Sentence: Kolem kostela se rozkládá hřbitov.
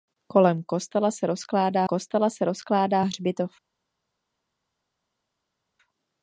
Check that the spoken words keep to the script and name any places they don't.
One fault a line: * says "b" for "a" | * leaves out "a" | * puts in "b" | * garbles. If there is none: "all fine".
* puts in "kostela se rozkládá"